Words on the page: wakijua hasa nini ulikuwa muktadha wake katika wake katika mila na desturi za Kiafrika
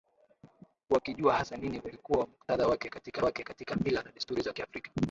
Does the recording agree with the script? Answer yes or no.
yes